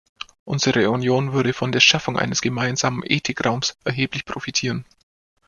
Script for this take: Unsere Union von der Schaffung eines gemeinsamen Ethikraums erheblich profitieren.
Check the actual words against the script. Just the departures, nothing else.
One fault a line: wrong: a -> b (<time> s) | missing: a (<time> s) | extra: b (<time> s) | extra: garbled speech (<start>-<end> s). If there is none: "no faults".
extra: würde (1.3 s)